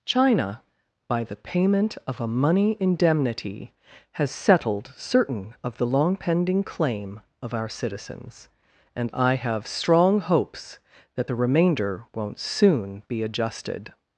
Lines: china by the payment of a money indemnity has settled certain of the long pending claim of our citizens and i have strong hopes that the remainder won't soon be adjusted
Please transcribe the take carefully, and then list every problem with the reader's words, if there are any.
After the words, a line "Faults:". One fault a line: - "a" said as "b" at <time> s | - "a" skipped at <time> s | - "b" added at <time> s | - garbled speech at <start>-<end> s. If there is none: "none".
china by the payment of a money indemnity has settled certain of the long pending claim of our citizens and i have strong hopes that the remainder won't soon be adjusted
Faults:
none